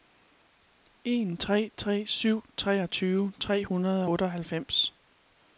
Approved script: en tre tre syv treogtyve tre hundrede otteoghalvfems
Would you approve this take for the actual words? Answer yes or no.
yes